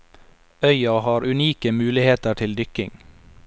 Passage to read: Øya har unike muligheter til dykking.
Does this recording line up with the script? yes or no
yes